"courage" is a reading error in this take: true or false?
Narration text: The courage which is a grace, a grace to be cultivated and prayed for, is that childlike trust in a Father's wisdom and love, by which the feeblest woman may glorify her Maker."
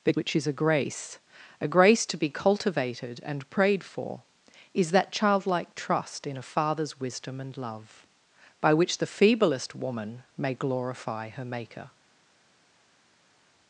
true